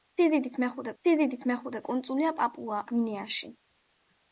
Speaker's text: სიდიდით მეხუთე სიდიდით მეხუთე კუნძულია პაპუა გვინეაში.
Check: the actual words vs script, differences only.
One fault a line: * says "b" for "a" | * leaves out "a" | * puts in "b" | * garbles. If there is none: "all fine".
all fine